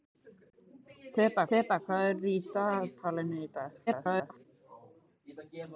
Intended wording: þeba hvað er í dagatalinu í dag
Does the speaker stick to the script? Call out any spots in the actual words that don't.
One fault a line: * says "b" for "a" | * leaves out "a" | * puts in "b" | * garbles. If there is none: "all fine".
* puts in "þeba"
* garbles